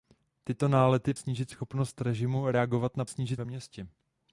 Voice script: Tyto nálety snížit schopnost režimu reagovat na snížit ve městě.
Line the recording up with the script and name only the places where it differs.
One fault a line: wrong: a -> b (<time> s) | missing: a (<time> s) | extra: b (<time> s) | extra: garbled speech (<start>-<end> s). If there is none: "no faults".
no faults